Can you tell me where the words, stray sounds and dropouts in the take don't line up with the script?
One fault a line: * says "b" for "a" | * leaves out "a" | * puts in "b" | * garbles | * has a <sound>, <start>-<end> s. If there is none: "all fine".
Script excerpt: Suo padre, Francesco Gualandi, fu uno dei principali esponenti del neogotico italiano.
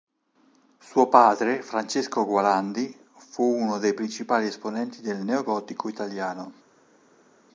all fine